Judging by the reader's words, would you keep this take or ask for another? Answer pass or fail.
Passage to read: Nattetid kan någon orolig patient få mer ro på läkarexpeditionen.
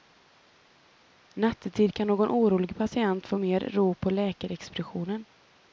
pass